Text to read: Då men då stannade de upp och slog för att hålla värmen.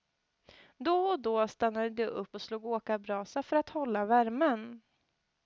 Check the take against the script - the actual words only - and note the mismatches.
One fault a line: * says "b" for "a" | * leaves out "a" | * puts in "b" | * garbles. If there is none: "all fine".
* says "och" for "men"
* puts in "åkarbrasa"